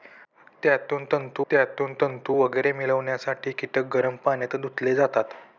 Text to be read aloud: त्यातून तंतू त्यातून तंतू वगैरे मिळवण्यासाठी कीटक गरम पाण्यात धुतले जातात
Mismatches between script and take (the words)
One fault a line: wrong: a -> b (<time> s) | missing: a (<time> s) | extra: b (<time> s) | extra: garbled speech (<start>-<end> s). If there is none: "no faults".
no faults